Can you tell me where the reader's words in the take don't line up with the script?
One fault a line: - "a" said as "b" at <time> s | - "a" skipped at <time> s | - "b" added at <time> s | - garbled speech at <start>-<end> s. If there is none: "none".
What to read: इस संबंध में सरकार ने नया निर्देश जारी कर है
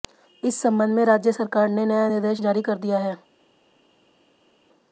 - "राज्य" added at 1.1 s
- "दिया" added at 2.8 s